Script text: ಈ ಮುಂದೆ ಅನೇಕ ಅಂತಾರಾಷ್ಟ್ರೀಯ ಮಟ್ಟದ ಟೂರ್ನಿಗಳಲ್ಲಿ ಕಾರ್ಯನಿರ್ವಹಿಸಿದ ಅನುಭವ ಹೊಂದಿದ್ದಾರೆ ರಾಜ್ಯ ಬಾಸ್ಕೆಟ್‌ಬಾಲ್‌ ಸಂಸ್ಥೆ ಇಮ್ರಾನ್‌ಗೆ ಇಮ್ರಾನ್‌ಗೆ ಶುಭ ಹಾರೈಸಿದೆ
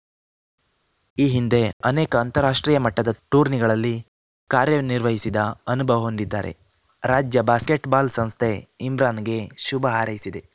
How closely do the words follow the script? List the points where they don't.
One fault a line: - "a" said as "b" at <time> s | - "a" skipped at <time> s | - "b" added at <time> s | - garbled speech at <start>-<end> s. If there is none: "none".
- "ಮುಂದೆ" said as "ಹಿಂದೆ" at 1.3 s
- "ಇಮ್ರಾನ್‌ಗೆ" skipped at 9.4 s